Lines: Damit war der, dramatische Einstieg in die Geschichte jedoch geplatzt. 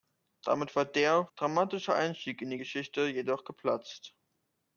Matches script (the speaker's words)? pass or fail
pass